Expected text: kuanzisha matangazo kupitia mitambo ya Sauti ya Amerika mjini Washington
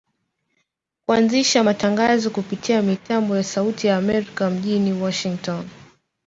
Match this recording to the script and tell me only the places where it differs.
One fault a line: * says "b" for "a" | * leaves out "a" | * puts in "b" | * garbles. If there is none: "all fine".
all fine